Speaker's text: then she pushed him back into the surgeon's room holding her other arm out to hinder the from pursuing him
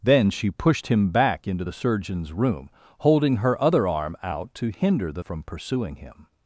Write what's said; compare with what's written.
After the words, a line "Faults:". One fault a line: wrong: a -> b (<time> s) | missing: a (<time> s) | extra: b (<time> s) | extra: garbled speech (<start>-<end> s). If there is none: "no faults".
then she pushed him back into the surgeon's room holding her other arm out to hinder the from pursuing him
Faults:
no faults